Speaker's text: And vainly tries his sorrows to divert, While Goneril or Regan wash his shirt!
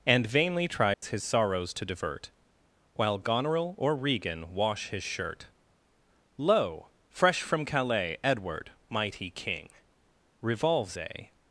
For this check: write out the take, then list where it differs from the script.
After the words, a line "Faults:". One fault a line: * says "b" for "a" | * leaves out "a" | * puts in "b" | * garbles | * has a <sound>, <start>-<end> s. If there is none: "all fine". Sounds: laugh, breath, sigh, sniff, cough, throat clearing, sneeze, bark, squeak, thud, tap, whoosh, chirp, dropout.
And vainly tries his sorrows to divert, While Goneril or Regan wash his shirt! Lo! fresh from Calais, Edward, mighty king! Revolves a
Faults:
* has a dropout, 0.9-1.0 s
* puts in "Lo fresh from Calais Edward mighty king Revolves a"